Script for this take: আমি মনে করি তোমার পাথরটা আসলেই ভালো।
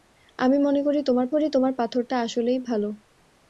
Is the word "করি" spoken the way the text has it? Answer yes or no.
yes